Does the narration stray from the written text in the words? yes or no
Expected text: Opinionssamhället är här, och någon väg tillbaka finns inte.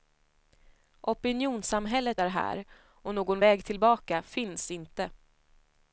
no